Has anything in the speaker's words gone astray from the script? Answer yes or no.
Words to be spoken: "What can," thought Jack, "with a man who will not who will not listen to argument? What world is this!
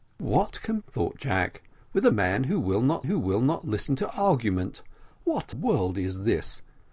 no